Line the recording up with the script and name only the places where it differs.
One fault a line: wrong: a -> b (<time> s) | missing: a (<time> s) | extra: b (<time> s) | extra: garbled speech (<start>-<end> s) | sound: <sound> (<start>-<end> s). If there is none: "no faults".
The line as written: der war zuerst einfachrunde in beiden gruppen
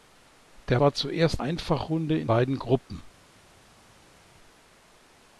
no faults